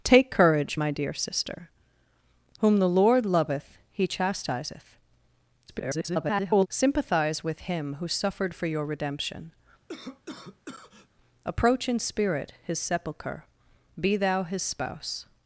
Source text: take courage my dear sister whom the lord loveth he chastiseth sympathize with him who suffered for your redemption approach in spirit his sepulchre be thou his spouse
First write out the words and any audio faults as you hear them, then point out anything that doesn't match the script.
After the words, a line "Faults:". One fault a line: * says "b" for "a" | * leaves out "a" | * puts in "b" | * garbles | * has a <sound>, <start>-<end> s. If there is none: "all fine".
take courage my dear sister whom the lord loveth he chastiseth [garbled] sympathize with him who suffered for your redemption approach in spirit his sepulchre be thou his spouse
Faults:
* garbles
* has a cough, 9.9-11.1 s